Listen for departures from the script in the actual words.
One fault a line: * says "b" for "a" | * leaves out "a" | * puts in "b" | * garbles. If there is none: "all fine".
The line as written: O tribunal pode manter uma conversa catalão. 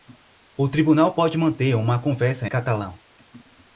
all fine